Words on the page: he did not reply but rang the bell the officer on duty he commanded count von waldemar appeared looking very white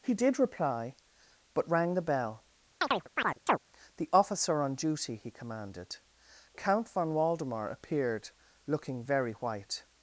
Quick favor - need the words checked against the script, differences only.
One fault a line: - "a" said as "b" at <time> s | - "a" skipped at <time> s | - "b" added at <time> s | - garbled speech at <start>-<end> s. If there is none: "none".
- "not" skipped at 0.4 s